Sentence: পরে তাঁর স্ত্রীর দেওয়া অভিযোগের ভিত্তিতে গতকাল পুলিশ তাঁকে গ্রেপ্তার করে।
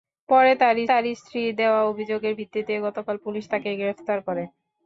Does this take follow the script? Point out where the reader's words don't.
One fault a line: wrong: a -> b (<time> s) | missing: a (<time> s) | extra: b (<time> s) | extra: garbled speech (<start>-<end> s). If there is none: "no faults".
extra: তাঁর (0.9 s)